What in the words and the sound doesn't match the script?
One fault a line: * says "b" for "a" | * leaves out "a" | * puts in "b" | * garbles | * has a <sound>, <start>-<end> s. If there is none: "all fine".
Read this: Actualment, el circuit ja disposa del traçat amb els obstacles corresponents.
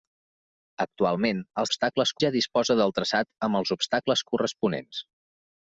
* says "obstacles" for "circuit"